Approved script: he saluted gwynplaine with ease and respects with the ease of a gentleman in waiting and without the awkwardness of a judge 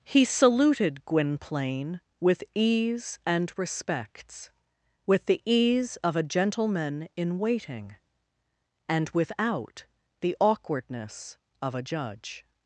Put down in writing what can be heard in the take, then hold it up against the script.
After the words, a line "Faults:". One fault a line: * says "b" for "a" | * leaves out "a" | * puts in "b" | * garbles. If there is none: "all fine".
he saluted gwynplaine with ease and respects with the ease of a gentleman in waiting and without the awkwardness of a judge
Faults:
all fine